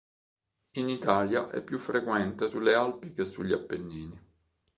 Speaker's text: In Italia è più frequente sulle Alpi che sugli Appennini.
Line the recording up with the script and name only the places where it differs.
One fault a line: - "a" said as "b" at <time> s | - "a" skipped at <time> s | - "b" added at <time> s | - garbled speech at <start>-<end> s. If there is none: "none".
none